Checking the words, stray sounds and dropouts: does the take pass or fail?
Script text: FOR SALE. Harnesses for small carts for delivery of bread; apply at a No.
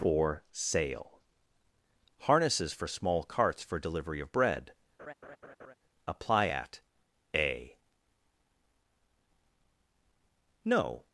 fail